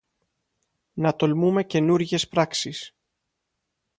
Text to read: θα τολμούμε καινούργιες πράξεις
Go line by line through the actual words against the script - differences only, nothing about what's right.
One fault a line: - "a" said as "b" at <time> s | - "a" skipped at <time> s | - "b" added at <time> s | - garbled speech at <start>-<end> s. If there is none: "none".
- "θα" said as "να" at 0.9 s